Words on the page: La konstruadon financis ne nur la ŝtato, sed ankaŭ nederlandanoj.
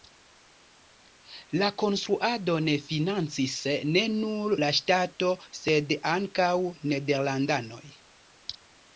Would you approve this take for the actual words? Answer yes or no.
yes